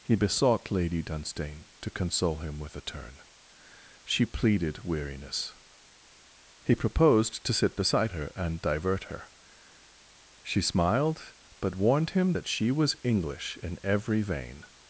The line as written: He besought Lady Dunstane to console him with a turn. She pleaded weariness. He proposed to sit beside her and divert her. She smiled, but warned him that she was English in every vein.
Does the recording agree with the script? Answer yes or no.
yes